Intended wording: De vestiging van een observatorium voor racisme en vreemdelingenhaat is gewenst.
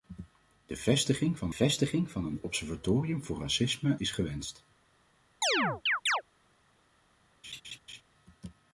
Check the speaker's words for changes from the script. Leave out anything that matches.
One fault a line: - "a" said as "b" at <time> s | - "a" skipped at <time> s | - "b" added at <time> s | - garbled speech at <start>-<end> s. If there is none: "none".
- "vestiging van" added at 1.5 s
- "en vreemdelingenhaat" skipped at 3.9 s